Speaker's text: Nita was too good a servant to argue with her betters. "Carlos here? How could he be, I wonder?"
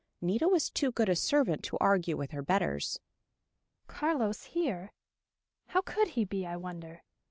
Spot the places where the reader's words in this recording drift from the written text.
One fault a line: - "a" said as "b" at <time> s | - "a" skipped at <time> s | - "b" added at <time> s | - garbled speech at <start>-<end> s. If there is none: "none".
none